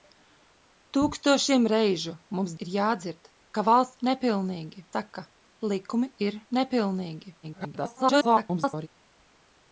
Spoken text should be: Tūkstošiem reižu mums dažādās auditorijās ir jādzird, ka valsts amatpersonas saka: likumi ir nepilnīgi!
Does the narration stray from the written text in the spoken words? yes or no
yes